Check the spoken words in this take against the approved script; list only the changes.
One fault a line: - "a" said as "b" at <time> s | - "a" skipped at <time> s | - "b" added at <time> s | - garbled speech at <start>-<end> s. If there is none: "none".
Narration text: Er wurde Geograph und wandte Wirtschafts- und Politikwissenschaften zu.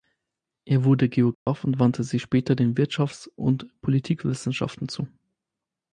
- "sich später den" added at 2.0 s